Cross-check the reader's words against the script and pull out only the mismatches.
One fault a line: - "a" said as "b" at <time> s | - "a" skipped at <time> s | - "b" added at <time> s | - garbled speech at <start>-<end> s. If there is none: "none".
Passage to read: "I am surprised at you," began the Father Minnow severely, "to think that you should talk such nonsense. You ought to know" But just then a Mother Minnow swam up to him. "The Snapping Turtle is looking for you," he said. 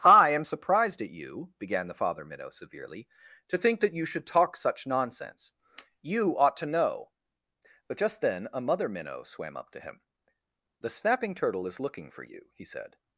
none